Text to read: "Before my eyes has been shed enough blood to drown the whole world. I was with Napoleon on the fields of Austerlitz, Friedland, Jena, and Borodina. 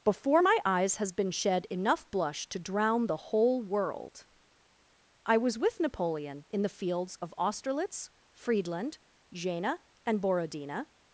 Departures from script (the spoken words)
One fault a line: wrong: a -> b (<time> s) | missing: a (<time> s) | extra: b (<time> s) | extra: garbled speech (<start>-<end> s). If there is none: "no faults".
wrong: blood -> blush (2.1 s)
wrong: on -> in (6.5 s)